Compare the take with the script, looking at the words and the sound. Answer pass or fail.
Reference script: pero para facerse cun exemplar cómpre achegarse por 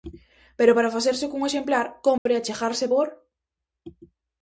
fail